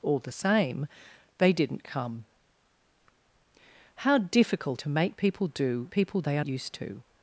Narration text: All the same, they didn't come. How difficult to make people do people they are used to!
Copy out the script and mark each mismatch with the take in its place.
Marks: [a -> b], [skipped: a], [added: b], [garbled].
All the same, they didn't come. How difficult to make people do people they are used to!